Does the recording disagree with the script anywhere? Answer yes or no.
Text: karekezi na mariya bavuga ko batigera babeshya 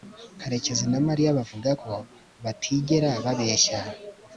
no